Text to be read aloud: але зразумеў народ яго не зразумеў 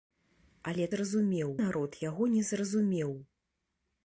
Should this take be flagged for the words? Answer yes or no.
no